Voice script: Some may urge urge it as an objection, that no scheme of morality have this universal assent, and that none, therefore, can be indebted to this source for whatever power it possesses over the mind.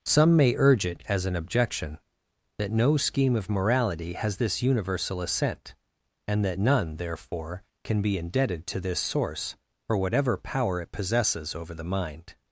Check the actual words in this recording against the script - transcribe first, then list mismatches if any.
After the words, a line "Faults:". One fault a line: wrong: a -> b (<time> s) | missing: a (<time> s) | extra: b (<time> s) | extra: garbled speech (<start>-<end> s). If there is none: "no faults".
Some may urge it as an objection, that no scheme of morality has this universal assent, and that none, therefore, can be indebted to this source for whatever power it possesses over the mind.
Faults:
missing: urge (0.8 s)
wrong: have -> has (4.1 s)